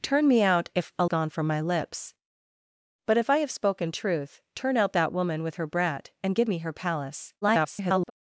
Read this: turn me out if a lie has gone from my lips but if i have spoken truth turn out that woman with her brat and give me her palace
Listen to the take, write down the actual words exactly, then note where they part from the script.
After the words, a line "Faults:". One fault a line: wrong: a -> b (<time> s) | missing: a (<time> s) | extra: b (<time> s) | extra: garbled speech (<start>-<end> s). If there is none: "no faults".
turn me out if a gone from my lips but if i have spoken truth turn out that woman with her brat and give me her palace [garbled]
Faults:
missing: lie has (1.1 s)
extra: garbled speech (7.4-8.1 s)